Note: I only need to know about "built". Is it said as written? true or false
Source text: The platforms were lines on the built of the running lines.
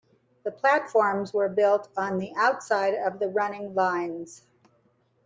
false